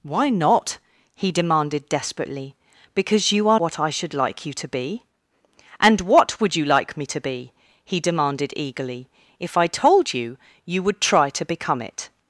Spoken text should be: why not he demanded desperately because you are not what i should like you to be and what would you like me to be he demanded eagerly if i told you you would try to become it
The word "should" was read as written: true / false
true